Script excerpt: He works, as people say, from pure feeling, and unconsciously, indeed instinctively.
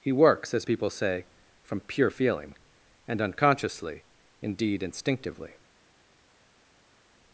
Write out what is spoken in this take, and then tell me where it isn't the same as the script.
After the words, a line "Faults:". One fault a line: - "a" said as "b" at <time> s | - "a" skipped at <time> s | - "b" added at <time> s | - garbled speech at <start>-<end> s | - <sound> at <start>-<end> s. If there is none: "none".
He works, as people say, from pure feeling, and unconsciously, indeed instinctively.
Faults:
none